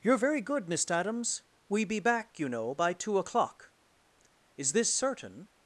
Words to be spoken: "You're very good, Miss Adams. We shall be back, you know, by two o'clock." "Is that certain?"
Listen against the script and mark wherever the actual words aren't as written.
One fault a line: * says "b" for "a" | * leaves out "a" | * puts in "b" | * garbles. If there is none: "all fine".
* leaves out "shall"
* says "this" for "that"